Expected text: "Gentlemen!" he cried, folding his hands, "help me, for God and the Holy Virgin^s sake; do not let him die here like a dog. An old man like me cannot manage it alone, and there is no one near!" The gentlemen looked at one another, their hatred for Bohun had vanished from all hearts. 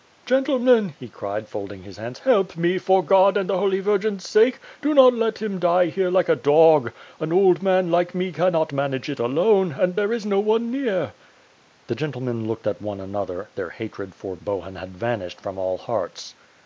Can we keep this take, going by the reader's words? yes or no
yes